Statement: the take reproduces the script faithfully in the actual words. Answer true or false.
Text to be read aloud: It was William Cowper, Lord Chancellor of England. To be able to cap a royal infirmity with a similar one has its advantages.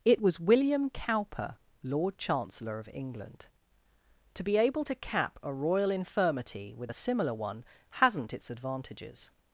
false